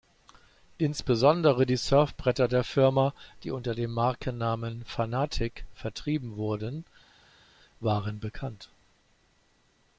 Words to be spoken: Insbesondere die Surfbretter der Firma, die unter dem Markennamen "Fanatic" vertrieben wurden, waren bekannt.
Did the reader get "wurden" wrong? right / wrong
right